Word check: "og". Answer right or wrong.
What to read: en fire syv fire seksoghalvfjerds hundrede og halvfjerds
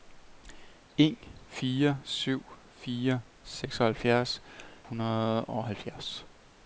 right